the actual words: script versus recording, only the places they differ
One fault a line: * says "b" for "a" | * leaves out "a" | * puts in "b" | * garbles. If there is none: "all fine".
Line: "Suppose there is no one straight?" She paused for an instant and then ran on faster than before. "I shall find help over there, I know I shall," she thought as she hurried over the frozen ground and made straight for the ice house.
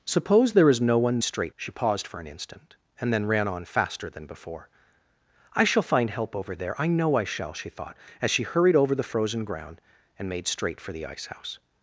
all fine